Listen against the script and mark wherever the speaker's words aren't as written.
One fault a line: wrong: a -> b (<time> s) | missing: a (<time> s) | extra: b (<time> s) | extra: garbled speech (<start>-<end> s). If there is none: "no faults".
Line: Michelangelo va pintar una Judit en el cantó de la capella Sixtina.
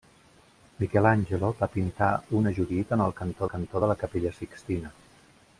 extra: cantó (3.5 s)